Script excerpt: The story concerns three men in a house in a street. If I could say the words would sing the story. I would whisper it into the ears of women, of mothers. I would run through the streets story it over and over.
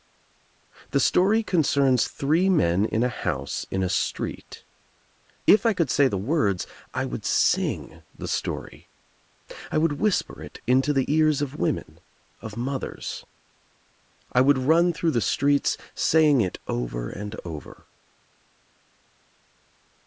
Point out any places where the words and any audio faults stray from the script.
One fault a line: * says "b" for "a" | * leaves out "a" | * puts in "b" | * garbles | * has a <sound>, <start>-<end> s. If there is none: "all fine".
* puts in "I"
* says "saying" for "story"